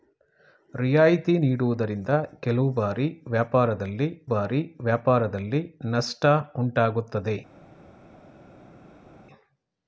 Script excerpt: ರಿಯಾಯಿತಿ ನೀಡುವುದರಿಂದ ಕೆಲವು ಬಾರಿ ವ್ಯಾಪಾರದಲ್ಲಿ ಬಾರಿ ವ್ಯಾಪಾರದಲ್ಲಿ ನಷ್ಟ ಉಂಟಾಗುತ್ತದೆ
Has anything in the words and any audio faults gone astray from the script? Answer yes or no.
no